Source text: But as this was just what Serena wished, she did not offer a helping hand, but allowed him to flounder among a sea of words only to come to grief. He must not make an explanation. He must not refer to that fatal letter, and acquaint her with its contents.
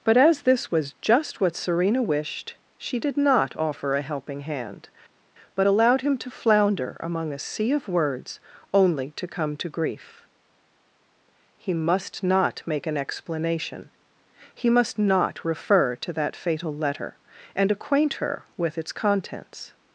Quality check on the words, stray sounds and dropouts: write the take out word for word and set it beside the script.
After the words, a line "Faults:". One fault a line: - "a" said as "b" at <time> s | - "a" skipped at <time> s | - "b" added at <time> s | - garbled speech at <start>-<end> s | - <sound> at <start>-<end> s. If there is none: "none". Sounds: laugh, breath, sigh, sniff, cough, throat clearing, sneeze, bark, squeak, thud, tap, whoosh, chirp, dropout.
But as this was just what Serena wished, she did not offer a helping hand, but allowed him to flounder among a sea of words only to come to grief. He must not make an explanation. He must not refer to that fatal letter, and acquaint her with its contents.
Faults:
none